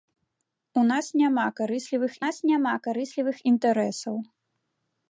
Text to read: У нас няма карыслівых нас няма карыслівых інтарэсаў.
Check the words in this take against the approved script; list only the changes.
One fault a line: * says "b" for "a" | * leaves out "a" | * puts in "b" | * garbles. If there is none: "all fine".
all fine